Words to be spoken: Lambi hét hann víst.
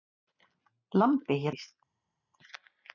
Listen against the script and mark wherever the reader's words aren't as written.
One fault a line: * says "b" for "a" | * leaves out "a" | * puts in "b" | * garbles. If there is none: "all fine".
* leaves out "hann"